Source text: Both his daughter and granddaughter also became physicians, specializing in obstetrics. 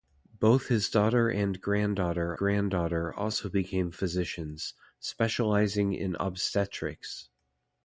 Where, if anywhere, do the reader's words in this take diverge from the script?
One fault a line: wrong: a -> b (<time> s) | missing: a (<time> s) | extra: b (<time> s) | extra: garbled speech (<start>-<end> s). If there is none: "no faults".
extra: granddaughter (2.3 s)